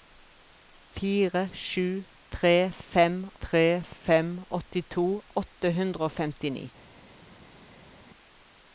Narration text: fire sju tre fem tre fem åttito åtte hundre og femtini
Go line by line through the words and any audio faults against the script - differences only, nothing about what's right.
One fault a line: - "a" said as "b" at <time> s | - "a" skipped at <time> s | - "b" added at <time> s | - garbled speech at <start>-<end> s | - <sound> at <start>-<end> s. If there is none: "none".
none